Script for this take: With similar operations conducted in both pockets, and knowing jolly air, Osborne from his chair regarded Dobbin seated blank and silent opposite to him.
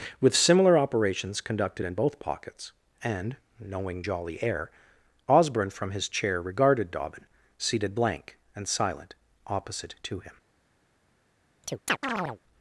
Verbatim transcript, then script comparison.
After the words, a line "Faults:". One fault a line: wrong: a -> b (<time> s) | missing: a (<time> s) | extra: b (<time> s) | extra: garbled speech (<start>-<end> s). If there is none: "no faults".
With similar operations conducted in both pockets, and knowing jolly air, Osborne from his chair regarded Dobbin seated blank and silent opposite to him.
Faults:
no faults